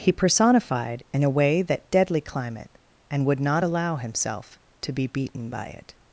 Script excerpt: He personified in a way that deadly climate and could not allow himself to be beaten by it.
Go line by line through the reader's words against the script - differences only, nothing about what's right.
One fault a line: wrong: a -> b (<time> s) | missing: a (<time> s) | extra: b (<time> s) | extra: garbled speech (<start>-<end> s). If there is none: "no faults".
wrong: could -> would (3.2 s)